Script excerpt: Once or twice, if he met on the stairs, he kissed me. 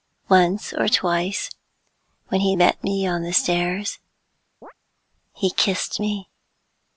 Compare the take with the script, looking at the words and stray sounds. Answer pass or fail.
fail